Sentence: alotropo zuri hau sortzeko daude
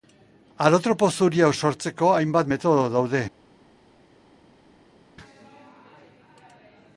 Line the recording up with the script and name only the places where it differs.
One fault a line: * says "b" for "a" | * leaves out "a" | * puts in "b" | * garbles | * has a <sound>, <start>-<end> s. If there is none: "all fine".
* puts in "hainbat metodo"